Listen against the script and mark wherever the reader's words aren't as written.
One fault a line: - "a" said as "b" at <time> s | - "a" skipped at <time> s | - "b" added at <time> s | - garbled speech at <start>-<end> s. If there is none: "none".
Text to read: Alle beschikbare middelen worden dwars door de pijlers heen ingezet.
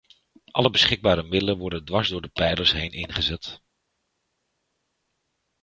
none